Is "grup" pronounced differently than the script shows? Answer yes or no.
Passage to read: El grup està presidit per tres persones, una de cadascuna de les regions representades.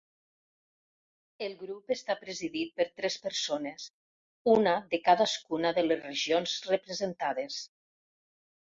no